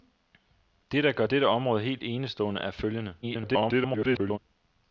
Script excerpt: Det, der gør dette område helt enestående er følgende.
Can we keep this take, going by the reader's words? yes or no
no